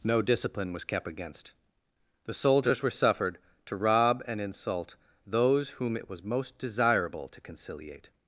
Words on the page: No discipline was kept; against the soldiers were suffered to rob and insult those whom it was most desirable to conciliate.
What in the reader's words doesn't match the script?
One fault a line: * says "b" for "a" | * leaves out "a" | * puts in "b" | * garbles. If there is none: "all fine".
all fine